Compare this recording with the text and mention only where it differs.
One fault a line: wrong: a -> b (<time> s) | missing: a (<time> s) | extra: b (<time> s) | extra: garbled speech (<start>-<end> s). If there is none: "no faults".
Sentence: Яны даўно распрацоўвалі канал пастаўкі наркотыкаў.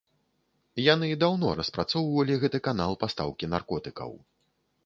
extra: гэты (2.5 s)